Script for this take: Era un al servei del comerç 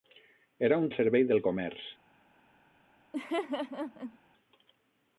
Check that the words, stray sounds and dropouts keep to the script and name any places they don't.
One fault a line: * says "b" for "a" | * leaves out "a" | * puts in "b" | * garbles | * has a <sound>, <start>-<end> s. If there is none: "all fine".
* has a laugh, 3.1-4.2 s